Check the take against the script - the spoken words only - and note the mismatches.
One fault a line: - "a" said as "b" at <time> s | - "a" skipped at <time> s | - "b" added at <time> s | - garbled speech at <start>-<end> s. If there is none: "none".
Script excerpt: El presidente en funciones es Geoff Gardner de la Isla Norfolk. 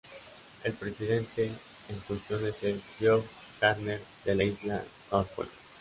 none